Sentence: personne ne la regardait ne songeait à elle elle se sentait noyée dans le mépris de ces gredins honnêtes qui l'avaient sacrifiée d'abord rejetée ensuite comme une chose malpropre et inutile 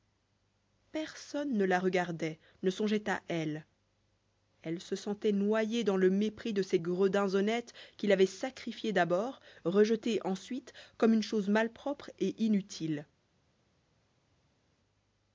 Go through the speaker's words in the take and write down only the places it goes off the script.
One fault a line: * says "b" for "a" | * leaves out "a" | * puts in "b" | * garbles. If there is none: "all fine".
all fine